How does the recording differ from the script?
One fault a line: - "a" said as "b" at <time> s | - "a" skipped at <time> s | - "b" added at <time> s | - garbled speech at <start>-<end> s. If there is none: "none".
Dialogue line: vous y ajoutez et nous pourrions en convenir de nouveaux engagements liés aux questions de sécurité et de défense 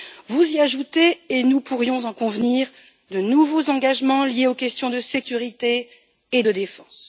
none